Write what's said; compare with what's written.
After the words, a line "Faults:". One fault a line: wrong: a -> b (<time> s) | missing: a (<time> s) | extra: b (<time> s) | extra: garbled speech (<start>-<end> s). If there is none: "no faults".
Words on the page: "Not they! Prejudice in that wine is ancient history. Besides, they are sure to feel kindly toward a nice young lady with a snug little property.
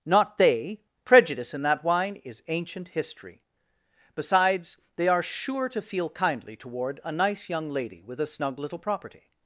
"Not they! Prejudice in that wine is ancient history. Besides, they are sure to feel kindly toward a nice young lady with a snug little property.
Faults:
no faults